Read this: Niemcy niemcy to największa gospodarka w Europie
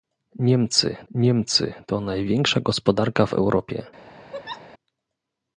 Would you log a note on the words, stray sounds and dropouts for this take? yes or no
yes